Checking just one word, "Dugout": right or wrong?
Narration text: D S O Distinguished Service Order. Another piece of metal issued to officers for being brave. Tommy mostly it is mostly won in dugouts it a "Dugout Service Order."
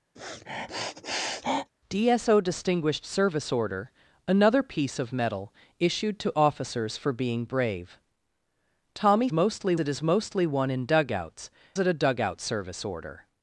right